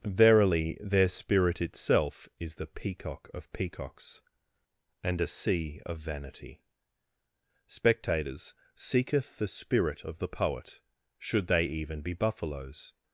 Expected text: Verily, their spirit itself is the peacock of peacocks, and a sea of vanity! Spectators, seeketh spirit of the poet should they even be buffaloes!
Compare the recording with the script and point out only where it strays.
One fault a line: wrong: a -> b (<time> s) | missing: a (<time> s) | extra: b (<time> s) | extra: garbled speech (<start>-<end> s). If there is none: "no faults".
extra: the (9.4 s)